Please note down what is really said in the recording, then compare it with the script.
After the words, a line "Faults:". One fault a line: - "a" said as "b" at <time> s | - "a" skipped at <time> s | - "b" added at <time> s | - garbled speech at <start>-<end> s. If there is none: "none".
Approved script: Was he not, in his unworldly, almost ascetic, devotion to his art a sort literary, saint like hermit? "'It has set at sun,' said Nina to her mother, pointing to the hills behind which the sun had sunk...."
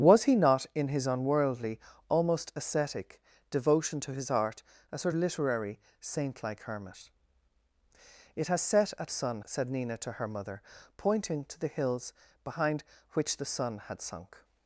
Was he not, in his unworldly, almost ascetic, devotion to his art a sort literary, saint like hermit? "'It has set at sun,' said Nina to her mother, pointing to the hills behind which the sun had sunk...."
Faults:
none